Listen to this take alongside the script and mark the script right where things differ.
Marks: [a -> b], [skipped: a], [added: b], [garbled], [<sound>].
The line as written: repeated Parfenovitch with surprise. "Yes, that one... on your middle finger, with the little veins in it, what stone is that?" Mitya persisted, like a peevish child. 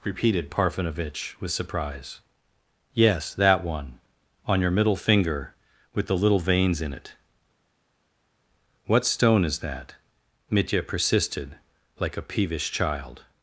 repeated Parfenovitch with surprise. "Yes, that one... on your middle finger, with the little veins in it, what stone is that?" Mitya persisted, like a peevish child.